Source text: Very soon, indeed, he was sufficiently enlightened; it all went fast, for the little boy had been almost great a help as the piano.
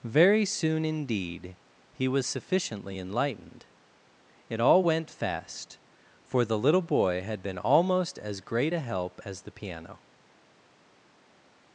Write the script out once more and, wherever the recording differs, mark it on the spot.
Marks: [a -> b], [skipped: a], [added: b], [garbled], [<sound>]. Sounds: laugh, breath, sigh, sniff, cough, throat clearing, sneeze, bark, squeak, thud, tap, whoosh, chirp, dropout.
Very soon, indeed, he was sufficiently enlightened; it all went fast, for the little boy had been almost [added: as] great a help as the piano.